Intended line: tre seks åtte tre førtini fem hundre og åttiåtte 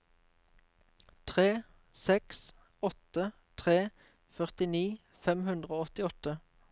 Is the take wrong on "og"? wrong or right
right